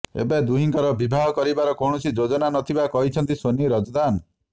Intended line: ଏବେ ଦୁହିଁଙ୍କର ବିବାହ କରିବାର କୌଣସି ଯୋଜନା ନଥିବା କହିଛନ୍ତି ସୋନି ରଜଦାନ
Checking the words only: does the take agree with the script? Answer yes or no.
yes